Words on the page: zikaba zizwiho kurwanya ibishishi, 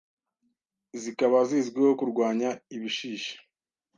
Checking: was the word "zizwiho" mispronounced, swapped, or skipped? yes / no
no